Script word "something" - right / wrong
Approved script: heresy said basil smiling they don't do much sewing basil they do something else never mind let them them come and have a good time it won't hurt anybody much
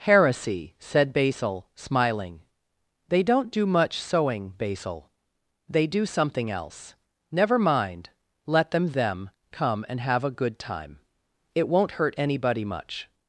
right